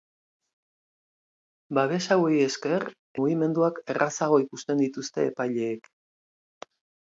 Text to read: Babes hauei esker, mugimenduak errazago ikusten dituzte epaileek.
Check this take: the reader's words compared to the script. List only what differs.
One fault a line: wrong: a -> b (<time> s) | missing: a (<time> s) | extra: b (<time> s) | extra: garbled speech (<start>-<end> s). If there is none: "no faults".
no faults